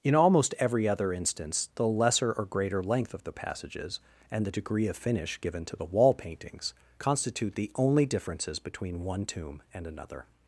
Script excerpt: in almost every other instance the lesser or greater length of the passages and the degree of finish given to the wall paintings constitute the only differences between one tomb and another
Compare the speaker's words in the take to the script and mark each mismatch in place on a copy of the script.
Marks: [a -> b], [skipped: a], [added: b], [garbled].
in almost every other instance the lesser or greater length of the passages and the degree of finish given to the wall paintings constitute the only differences between one tomb and another